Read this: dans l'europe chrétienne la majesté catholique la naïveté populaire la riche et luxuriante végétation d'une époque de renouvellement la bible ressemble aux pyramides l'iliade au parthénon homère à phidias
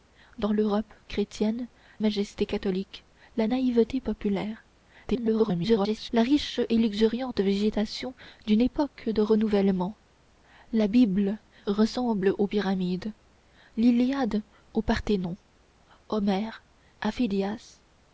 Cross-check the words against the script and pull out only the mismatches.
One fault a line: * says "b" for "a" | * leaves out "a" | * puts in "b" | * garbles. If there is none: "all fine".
* leaves out "la"
* garbles